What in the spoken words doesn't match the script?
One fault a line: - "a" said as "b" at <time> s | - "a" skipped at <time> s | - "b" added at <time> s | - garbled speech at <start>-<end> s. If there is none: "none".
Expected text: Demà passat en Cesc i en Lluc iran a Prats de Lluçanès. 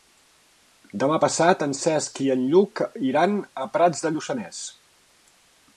none